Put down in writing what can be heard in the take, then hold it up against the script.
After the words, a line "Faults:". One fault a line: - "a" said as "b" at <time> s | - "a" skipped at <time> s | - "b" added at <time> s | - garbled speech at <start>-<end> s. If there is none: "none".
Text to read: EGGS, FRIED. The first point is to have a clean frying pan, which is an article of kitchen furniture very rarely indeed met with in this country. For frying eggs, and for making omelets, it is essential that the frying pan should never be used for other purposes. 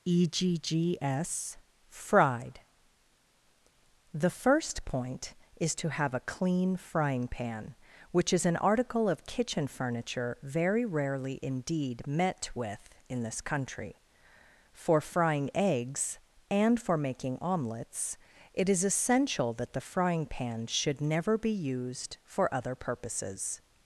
EGGS, FRIED. The first point is to have a clean frying pan, which is an article of kitchen furniture very rarely indeed met with in this country. For frying eggs, and for making omelets, it is essential that the frying pan should never be used for other purposes.
Faults:
none